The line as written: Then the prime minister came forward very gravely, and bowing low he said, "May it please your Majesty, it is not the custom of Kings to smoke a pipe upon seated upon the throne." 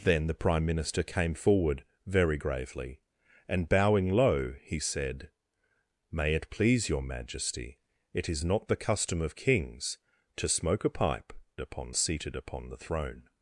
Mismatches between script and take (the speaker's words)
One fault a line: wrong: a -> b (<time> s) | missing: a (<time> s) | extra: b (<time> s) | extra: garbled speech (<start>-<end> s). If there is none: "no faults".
no faults